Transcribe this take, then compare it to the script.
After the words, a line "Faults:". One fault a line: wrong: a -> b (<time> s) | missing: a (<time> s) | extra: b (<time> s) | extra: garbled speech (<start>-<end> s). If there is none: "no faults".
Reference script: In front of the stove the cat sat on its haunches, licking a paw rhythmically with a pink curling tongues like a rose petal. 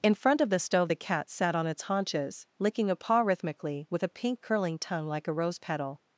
In front of the stove the cat sat on its haunches, licking a paw rhythmically with a pink curling tongue like a rose petal.
Faults:
wrong: tongues -> tongue (4.8 s)